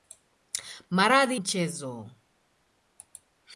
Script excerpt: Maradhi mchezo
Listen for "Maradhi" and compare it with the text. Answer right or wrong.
right